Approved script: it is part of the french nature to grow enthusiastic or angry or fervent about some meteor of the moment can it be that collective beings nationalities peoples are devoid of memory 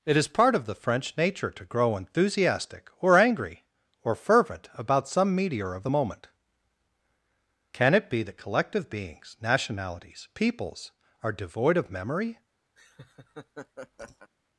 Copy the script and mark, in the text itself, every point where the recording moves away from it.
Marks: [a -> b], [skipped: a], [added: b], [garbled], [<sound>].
it is part of the french nature to grow enthusiastic or angry or fervent about some meteor of the moment can it be that collective beings nationalities peoples are devoid of memory [laugh]